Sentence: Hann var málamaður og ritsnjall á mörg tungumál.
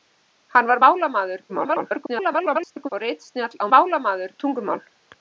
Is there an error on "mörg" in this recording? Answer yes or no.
yes